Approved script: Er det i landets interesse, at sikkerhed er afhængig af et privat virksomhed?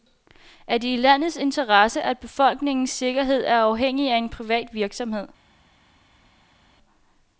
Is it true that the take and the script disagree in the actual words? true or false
true